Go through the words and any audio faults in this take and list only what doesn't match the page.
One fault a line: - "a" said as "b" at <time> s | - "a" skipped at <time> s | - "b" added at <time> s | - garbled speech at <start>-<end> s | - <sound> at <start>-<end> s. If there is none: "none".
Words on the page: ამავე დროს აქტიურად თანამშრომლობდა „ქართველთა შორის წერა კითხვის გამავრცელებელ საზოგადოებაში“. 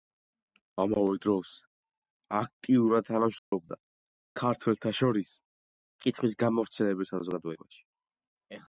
- dropout at 3.4-3.5 s
- "წერა" skipped at 5.3 s